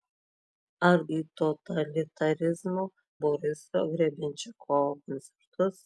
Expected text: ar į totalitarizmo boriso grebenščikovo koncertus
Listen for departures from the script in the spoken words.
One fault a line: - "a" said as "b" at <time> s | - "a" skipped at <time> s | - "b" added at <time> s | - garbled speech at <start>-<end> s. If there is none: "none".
none